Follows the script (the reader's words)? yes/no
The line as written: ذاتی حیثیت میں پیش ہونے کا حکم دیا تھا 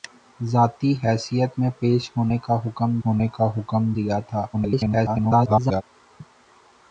no